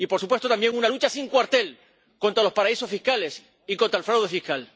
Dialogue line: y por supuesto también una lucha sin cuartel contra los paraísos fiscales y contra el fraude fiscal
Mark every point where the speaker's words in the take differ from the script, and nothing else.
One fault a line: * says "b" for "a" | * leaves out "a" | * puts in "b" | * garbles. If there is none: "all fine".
all fine